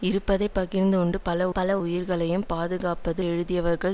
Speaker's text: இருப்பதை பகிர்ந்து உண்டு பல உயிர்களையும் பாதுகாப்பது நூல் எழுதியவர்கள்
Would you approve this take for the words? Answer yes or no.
no